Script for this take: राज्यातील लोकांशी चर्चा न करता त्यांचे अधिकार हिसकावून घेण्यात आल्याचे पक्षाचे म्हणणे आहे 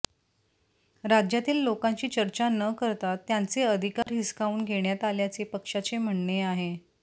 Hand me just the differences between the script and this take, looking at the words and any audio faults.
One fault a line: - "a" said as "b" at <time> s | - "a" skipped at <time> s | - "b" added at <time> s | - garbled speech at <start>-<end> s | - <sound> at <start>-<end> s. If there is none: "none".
- dropout at 4.0-4.1 s